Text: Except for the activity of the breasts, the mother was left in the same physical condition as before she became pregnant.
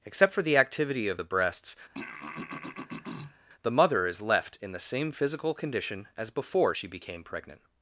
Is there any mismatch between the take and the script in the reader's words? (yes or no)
yes